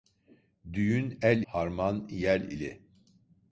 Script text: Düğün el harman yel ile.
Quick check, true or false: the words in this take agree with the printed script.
true